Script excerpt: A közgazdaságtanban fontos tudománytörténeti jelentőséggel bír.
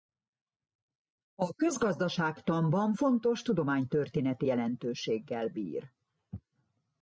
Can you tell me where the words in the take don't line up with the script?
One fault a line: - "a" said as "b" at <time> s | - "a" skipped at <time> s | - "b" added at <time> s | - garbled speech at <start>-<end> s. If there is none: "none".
none